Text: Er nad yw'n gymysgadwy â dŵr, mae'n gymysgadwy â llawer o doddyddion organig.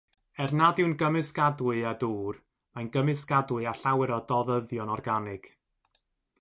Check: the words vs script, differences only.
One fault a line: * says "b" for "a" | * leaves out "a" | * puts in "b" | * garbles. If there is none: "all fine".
all fine